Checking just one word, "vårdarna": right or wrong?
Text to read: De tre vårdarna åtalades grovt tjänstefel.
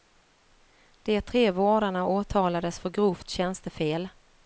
right